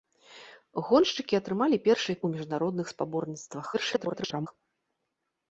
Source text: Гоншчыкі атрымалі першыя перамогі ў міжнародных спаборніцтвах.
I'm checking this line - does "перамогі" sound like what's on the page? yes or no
no